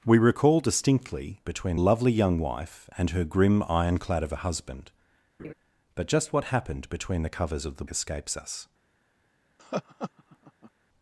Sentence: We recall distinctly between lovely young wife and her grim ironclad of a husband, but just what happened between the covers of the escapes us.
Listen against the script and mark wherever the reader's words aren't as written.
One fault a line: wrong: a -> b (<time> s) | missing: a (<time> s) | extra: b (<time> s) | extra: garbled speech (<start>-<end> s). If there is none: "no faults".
no faults